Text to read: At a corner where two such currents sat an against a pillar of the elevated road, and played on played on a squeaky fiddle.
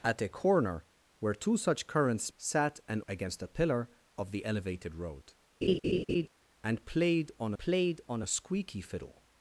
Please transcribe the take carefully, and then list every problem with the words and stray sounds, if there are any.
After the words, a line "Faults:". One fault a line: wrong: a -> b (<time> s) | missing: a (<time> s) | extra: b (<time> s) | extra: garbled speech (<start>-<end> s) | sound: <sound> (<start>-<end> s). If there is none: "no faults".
At a corner where two such currents sat an against a pillar of the elevated road, and played on played on a squeaky fiddle.
Faults:
sound: laugh (5.6-6.3 s)